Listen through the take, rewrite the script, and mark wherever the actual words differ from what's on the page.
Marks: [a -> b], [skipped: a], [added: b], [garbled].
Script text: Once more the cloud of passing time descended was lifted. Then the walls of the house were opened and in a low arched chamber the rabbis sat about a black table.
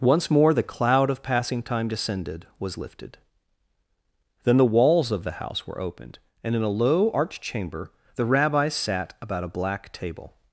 Once more the cloud of passing time descended was lifted. Then the walls of the house were opened and in a low arched chamber the rabbis sat about a black table.